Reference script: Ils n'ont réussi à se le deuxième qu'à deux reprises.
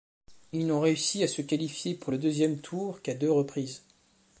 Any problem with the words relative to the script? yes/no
yes